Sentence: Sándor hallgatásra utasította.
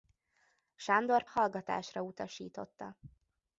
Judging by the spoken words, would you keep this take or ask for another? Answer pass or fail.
pass